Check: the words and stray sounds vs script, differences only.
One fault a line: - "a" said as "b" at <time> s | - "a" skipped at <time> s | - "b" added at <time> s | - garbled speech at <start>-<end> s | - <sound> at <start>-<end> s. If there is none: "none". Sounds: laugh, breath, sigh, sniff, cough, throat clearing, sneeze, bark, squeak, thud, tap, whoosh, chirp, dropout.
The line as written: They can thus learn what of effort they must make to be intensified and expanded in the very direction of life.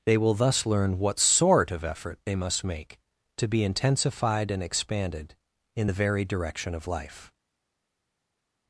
- "can" said as "will" at 0.2 s
- "sort" added at 1.2 s